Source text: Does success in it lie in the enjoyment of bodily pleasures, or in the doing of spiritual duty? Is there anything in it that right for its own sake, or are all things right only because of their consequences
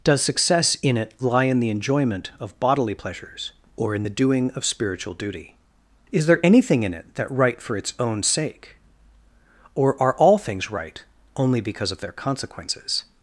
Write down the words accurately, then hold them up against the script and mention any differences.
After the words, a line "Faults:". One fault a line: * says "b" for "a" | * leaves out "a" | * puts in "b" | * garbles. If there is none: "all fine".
Does success in it lie in the enjoyment of bodily pleasures, or in the doing of spiritual duty? Is there anything in it that right for its own sake, or are all things right only because of their consequences
Faults:
all fine